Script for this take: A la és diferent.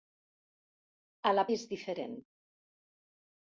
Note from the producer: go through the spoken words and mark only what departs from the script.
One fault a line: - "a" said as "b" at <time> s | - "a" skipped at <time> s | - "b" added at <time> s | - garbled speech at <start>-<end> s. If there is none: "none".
none